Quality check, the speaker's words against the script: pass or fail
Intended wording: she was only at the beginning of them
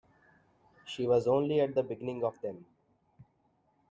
pass